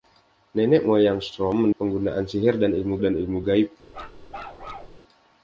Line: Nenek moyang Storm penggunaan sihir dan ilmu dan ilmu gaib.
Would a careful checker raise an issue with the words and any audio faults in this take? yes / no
yes